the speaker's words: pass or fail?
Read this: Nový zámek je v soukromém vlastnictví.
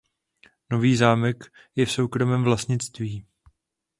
pass